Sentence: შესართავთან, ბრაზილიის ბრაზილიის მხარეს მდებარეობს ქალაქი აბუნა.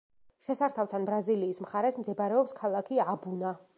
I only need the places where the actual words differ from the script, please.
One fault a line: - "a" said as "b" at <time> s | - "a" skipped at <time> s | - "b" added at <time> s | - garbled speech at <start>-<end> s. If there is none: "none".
- "ბრაზილიის" skipped at 1.6 s